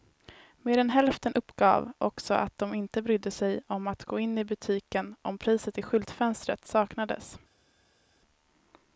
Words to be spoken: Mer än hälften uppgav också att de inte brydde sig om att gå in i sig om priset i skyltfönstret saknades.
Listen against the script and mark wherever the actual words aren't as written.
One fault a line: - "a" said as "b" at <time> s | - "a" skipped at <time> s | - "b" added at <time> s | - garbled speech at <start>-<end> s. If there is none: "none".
- "sig" said as "butiken" at 4.4 s